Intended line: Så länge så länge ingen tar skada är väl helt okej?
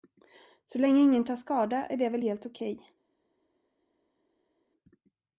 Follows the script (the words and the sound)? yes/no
no